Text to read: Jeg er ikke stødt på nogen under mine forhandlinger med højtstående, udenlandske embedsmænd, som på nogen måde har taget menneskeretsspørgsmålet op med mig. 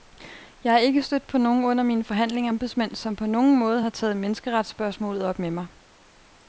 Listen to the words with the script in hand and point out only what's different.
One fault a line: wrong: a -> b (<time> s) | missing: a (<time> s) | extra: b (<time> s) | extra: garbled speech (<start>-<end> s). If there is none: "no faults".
missing: med højtstående udenlandske (2.5 s)